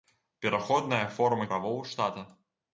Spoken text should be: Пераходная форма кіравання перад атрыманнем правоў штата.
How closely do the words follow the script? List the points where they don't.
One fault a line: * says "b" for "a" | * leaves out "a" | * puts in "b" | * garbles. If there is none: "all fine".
* leaves out "кіравання перад атрыманнем"